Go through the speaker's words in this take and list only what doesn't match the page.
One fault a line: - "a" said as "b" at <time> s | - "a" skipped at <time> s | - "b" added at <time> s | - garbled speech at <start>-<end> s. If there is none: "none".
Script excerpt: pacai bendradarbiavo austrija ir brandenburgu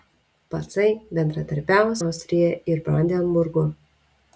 none